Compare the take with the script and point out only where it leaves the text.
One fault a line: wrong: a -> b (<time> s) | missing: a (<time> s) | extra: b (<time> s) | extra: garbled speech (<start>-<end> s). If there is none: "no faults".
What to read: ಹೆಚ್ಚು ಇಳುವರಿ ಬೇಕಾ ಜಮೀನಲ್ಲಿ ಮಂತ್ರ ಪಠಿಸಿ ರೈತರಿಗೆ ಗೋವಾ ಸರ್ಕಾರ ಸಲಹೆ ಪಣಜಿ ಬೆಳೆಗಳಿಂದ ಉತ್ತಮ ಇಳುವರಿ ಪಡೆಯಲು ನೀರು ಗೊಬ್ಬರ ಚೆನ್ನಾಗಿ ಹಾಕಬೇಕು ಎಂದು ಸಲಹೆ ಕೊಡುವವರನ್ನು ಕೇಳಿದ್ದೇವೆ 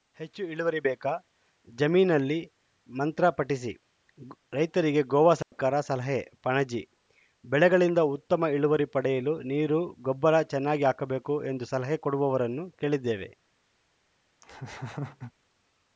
no faults